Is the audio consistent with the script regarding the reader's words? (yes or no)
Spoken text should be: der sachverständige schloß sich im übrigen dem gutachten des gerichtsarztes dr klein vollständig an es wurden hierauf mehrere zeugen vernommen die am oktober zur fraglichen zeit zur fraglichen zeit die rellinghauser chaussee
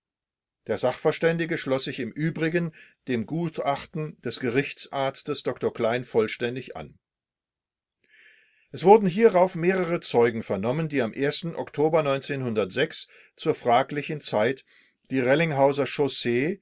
no